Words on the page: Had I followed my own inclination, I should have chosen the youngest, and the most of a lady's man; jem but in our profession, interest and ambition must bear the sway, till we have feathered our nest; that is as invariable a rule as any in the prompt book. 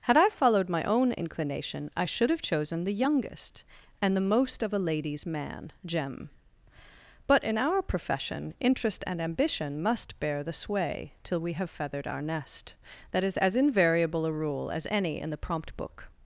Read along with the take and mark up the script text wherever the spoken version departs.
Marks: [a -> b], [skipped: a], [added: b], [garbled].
Had I followed my own inclination, I should have chosen the youngest, and the most of a lady's man; jem but in our profession, interest and ambition must bear the sway, till we have feathered our nest; that is as invariable a rule as any in the prompt book.